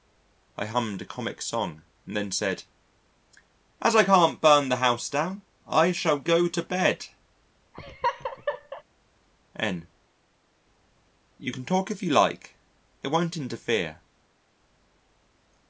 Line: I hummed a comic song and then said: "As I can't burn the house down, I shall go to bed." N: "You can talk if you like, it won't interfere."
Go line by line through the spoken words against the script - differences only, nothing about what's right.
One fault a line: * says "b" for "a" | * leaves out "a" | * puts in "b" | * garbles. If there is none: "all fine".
all fine